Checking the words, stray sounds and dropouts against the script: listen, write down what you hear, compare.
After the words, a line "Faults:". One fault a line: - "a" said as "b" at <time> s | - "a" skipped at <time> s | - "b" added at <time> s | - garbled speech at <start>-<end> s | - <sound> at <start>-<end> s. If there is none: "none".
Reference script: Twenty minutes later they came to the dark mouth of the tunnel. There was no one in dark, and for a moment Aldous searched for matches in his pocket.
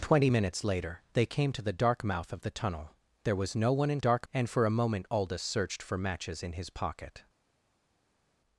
Twenty minutes later they came to the dark mouth of the tunnel. There was no one in dark, and for a moment Aldous searched for matches in his pocket.
Faults:
none